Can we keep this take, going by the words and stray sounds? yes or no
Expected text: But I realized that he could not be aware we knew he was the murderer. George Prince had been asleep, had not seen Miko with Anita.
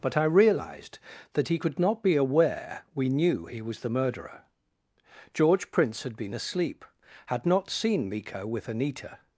yes